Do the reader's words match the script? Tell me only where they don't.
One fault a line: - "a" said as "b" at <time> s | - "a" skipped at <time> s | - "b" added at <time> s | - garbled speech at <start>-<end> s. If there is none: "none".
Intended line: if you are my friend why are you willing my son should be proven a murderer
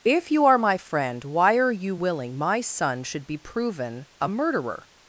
none